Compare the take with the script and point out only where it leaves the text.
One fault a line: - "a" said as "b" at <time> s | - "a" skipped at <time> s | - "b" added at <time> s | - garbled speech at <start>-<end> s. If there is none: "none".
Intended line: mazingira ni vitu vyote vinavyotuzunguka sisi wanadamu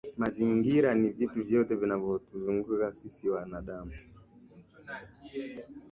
none